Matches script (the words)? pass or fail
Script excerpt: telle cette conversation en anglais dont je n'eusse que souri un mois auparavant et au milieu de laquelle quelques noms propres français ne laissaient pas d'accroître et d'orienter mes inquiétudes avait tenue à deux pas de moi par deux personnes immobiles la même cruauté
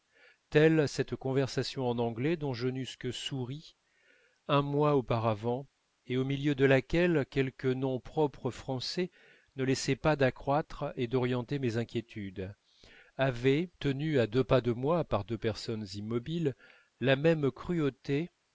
pass